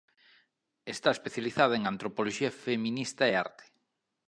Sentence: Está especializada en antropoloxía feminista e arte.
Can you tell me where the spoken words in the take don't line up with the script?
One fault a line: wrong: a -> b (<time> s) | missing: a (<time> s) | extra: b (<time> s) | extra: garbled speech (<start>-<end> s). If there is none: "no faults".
no faults